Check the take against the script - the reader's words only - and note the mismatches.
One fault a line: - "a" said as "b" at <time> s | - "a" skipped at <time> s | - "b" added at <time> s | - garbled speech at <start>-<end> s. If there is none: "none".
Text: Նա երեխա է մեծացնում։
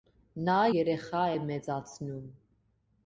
none